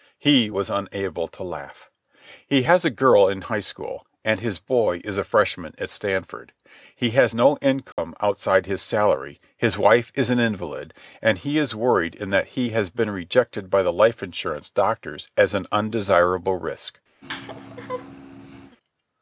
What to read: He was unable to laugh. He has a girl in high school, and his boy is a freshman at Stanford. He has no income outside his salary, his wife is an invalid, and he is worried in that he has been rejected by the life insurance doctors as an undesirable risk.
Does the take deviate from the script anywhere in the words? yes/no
no